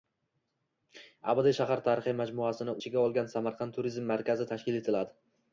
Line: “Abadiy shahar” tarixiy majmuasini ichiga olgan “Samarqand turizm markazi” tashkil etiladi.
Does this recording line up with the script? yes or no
yes